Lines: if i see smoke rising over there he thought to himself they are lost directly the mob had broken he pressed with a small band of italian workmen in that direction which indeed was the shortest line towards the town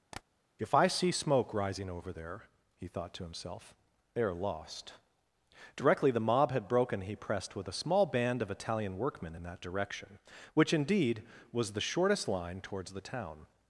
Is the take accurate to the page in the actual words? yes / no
yes